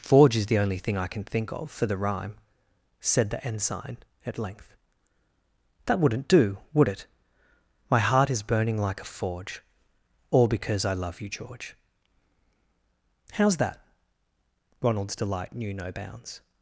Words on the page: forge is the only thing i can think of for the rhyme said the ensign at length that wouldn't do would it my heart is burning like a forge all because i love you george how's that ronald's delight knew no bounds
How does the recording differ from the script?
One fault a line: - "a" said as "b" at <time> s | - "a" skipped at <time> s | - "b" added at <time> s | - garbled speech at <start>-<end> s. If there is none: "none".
none